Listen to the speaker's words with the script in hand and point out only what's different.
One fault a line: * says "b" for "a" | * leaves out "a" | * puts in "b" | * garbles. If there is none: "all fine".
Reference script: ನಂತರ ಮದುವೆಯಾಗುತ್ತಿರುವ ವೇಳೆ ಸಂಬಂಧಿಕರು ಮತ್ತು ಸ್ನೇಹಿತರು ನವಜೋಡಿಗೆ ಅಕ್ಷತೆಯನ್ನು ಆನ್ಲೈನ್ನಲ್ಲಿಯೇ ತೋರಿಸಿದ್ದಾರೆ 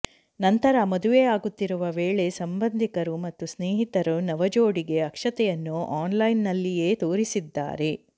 all fine